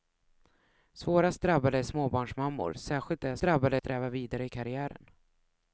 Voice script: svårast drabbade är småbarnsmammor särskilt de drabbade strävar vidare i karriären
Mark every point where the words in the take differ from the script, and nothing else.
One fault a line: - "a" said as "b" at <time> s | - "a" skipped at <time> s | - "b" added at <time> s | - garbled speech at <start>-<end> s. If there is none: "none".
none